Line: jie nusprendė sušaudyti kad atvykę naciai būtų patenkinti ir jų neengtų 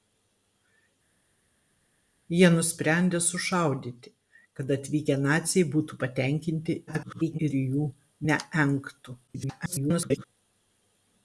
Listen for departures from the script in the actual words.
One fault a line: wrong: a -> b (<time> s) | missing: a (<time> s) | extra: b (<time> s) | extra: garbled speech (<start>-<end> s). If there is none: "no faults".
extra: garbled speech (6.9-7.4 s)
extra: garbled speech (9.3-10.3 s)